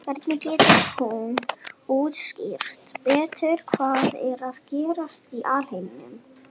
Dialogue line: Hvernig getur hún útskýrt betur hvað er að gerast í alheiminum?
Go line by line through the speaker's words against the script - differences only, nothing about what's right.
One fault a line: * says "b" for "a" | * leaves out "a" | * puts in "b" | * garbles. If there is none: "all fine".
all fine